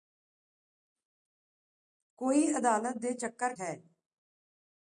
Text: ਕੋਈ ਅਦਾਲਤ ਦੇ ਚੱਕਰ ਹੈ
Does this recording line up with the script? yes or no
yes